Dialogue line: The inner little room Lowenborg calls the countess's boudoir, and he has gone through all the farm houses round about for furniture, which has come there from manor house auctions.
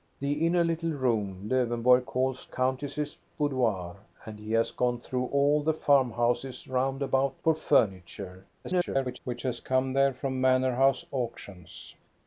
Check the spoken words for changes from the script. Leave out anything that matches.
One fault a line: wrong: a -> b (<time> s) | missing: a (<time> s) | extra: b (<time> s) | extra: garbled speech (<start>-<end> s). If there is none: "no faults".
missing: the (2.5 s)
extra: garbled speech (8.6-9.2 s)